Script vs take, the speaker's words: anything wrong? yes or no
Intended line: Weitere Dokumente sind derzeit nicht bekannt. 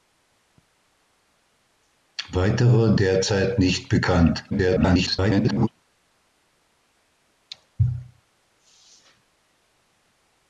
yes